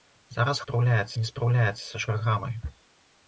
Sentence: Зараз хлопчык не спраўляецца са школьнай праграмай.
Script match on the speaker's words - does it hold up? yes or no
no